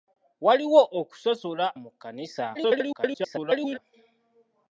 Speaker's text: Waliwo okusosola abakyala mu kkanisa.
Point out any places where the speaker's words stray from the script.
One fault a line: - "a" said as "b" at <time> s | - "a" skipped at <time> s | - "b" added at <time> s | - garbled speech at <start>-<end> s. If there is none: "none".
- "abakyala" skipped at 1.6 s
- garbled speech at 2.5-3.8 s